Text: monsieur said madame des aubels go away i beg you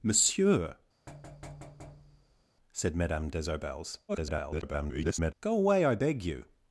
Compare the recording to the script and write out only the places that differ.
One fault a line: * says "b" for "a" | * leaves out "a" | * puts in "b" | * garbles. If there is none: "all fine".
* garbles